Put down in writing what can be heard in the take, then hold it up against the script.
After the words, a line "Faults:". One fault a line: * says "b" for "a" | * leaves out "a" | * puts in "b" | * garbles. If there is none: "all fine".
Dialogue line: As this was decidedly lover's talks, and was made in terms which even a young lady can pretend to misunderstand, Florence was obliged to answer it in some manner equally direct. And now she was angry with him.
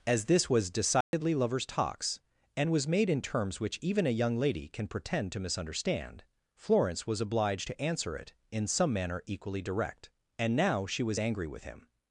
As this was decidedly lover's talks, and was made in terms which even a young lady can pretend to misunderstand, Florence was obliged to answer it in some manner equally direct. And now she was angry with him.
Faults:
all fine